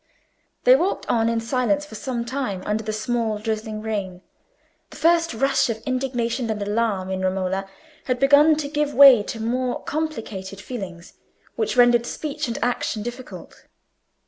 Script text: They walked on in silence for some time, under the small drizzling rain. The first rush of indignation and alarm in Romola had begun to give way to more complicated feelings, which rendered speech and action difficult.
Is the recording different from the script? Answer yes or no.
no